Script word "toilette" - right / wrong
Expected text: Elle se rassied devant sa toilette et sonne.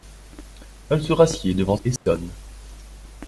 wrong